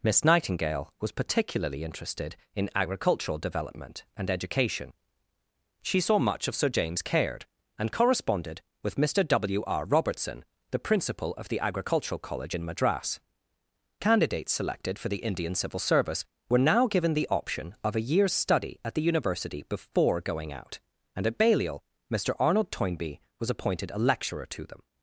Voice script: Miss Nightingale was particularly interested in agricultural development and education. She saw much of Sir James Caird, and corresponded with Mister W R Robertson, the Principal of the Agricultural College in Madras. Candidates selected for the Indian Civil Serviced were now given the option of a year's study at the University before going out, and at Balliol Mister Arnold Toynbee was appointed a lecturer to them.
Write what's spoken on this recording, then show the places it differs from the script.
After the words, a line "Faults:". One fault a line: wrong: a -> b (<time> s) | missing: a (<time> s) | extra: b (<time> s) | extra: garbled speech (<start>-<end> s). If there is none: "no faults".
Miss Nightingale was particularly interested in agricultural development and education. She saw much of Sir James Caird, and corresponded with Mister W R Robertson, the Principal of the Agricultural College in Madras. Candidates selected for the Indian Civil Service were now given the option of a year's study at the University before going out, and at Balliol Mister Arnold Toynbee was appointed a lecturer to them.
Faults:
wrong: Serviced -> Service (15.8 s)